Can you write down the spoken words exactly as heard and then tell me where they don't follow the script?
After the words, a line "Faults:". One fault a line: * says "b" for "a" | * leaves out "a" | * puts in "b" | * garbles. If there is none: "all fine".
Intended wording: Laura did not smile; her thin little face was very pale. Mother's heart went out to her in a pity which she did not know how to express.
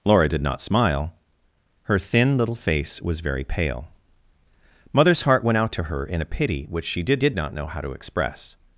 Laura did not smile; her thin little face was very pale. Mother's heart went out to her in a pity which she did did not know how to express.
Faults:
* puts in "did"